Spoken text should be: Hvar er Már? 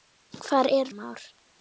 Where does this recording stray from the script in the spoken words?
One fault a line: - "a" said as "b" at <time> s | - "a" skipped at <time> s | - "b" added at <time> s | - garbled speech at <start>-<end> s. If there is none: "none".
none